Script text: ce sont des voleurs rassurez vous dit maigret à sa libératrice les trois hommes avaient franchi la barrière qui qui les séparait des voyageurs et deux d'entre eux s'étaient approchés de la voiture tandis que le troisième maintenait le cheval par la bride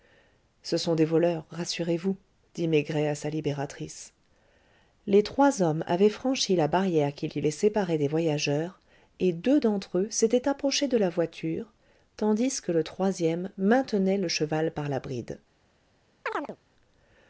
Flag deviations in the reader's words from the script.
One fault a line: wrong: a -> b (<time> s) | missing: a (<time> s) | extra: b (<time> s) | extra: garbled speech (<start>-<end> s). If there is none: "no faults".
no faults